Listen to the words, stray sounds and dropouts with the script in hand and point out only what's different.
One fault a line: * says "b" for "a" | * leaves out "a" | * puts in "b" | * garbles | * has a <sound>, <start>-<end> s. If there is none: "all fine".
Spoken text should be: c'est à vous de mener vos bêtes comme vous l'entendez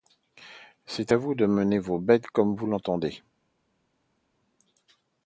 all fine